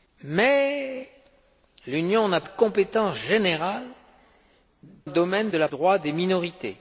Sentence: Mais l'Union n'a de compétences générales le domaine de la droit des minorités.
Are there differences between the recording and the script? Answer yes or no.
no